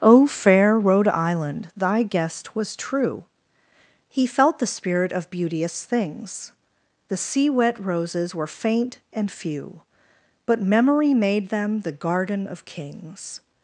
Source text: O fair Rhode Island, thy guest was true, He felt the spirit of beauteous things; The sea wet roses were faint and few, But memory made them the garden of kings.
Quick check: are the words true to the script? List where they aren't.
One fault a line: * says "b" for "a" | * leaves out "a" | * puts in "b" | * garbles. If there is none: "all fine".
all fine